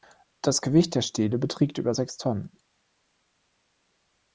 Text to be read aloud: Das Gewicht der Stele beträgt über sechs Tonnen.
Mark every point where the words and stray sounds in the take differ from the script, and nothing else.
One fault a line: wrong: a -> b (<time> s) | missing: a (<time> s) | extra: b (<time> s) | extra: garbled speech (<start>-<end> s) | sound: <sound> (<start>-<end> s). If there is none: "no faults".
no faults